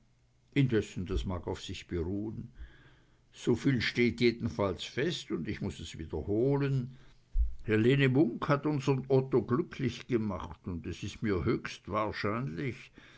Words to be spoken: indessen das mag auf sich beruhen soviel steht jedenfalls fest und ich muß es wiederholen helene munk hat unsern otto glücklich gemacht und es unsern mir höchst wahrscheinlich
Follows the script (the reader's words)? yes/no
no